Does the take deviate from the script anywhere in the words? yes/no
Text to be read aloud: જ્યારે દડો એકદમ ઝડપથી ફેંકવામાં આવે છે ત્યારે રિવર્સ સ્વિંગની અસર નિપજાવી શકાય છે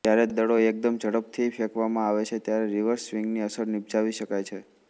no